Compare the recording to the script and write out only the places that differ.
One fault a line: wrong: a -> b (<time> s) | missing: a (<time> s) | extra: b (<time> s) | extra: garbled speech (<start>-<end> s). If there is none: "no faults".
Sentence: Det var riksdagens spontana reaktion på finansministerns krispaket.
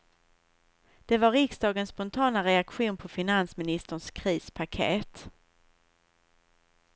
no faults